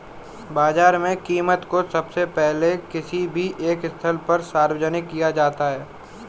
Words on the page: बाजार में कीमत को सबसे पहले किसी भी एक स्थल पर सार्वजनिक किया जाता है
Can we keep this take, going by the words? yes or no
yes